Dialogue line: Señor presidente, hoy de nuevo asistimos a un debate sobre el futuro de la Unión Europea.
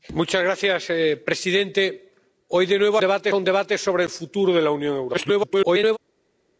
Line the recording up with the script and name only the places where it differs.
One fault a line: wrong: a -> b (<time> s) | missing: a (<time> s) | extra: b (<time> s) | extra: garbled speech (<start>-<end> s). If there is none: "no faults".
wrong: asistimos -> debate (3.0 s)
extra: garbled speech (5.1-6.0 s)